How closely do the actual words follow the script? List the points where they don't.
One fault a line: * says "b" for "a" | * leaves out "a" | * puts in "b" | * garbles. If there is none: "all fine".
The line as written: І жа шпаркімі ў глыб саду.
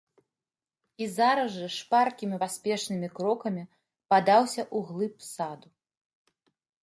* puts in "зараз"
* puts in "паспешнымі крокамі падаўся"